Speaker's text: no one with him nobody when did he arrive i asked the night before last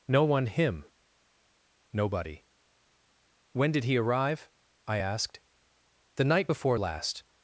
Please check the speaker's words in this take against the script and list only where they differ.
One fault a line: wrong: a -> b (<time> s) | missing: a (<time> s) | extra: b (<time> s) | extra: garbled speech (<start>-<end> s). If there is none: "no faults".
missing: with (0.5 s)